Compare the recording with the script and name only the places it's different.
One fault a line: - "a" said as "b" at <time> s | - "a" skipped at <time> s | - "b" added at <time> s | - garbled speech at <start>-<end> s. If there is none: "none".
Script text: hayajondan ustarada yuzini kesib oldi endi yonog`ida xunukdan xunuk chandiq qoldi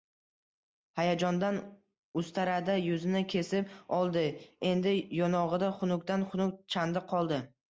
none